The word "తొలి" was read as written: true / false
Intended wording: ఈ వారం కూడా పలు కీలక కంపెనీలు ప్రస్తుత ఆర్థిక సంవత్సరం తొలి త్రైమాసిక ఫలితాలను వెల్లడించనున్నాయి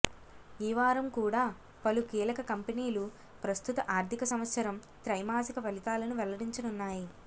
false